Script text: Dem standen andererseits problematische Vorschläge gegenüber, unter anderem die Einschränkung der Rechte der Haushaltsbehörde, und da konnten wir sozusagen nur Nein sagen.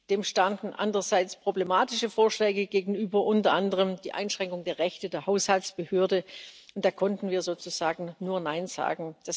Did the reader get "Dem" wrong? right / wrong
right